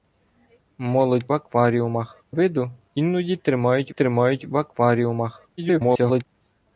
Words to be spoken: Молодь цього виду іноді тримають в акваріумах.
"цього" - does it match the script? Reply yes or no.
no